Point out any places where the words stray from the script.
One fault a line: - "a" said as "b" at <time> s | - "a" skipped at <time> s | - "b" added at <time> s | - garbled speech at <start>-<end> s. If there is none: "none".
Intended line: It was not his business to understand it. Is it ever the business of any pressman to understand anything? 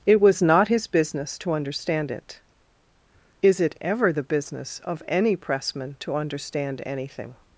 none